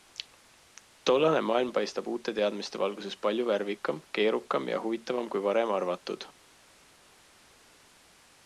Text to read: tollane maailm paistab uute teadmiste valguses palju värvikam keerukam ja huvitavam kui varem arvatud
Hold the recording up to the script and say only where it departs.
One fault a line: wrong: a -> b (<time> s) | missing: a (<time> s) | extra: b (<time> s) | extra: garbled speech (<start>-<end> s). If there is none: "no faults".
no faults